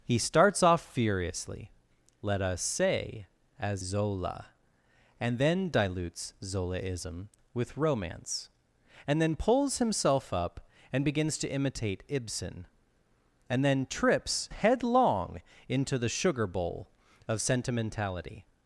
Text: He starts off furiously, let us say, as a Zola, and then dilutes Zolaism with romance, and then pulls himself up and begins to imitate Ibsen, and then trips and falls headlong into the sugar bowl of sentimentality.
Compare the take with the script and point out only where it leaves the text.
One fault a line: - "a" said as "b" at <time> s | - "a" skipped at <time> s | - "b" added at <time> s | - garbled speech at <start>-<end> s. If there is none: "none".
- "a" skipped at 3.8 s
- "and falls" skipped at 14.5 s